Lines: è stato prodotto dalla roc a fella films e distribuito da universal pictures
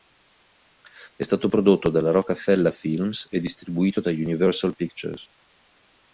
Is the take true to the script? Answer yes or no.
yes